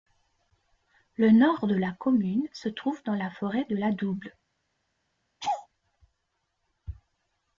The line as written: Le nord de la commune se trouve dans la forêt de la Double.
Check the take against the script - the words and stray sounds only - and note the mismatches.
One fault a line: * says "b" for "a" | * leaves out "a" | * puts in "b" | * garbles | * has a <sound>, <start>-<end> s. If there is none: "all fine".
* has a laugh, 5.4-5.7 s